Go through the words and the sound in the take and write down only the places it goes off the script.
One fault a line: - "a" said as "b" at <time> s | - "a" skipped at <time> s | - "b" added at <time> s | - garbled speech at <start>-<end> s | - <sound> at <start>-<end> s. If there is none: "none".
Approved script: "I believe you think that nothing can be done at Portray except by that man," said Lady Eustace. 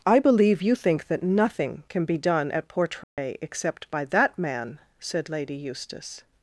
- dropout at 3.0-3.2 s